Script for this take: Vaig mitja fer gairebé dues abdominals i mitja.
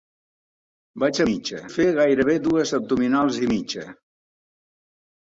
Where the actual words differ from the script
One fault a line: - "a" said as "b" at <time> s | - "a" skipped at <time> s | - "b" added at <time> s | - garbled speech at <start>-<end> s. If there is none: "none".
none